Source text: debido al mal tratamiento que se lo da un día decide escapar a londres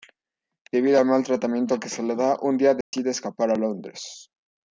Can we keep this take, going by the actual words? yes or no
no